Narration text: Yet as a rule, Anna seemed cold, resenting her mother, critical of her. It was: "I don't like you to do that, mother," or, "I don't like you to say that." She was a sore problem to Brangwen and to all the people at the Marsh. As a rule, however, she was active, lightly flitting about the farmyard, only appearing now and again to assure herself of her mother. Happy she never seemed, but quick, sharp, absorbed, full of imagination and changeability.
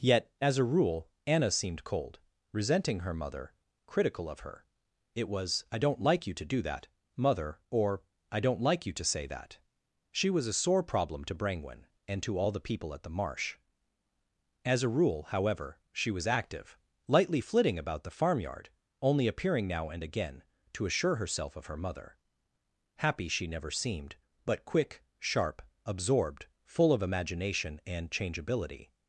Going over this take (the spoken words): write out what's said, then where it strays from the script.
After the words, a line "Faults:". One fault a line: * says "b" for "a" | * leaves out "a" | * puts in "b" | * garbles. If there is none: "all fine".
Yet as a rule, Anna seemed cold, resenting her mother, critical of her. It was: "I don't like you to do that, mother," or, "I don't like you to say that." She was a sore problem to Brangwen and to all the people at the Marsh. As a rule, however, she was active, lightly flitting about the farmyard, only appearing now and again to assure herself of her mother. Happy she never seemed, but quick, sharp, absorbed, full of imagination and changeability.
Faults:
all fine